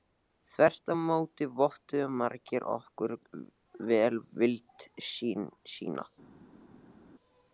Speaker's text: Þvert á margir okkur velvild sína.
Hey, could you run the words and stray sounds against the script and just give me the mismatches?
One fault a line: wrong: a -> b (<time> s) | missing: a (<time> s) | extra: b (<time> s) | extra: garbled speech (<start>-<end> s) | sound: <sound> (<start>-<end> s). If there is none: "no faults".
extra: móti vottuðu (1.1 s)